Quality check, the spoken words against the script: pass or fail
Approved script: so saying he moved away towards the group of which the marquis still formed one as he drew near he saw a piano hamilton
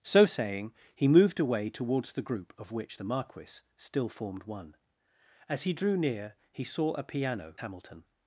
pass